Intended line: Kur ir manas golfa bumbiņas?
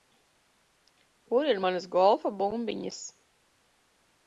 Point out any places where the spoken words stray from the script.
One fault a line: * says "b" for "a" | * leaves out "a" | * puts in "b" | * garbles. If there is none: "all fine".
all fine